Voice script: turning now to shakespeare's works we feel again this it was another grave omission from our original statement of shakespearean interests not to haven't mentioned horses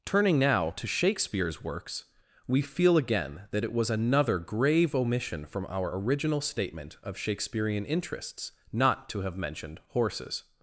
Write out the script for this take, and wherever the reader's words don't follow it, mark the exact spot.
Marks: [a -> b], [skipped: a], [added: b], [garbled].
turning now to shakespeare's works we feel again [this -> that] it was another grave omission from our original statement of shakespearean interests not to [haven't -> have] mentioned horses